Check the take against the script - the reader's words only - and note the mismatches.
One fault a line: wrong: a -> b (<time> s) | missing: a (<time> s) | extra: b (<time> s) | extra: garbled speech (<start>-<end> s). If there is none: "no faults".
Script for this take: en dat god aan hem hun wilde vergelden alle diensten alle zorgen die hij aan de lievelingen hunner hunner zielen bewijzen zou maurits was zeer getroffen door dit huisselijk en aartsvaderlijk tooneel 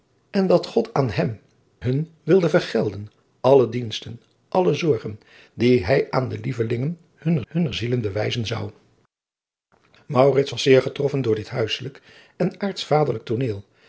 no faults